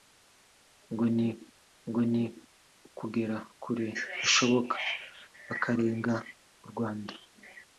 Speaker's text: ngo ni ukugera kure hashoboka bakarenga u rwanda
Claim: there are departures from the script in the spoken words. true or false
true